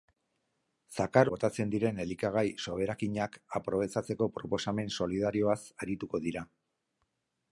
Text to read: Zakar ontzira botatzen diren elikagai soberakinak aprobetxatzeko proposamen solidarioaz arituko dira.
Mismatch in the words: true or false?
true